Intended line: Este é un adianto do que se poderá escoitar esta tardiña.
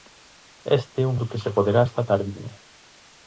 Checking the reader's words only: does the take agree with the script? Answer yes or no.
no